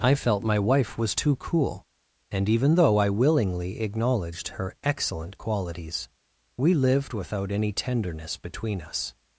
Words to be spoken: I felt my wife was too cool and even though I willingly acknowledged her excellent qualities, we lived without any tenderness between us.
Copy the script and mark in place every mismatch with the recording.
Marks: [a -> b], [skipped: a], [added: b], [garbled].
I felt my wife was too cool and even though I willingly acknowledged her excellent qualities, we lived without any tenderness between us.